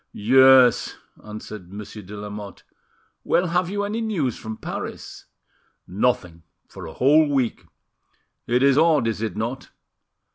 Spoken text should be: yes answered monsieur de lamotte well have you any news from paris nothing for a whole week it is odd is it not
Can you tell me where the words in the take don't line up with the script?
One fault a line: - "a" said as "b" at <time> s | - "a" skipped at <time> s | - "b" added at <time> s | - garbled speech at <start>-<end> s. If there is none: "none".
none